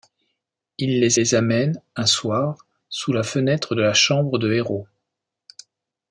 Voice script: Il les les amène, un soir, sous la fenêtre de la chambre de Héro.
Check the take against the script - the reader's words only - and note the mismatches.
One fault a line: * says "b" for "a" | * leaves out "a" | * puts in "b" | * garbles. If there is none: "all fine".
all fine